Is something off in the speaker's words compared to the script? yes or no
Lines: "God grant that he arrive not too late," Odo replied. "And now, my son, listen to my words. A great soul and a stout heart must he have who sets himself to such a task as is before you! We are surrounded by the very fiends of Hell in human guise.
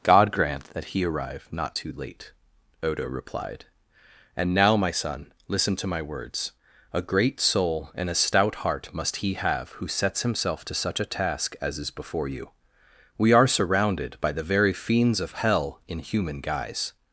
no